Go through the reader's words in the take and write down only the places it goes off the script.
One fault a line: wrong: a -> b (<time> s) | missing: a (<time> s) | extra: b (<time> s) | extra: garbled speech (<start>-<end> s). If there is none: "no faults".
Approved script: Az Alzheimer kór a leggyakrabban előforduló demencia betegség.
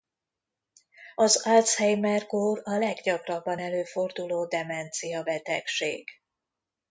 no faults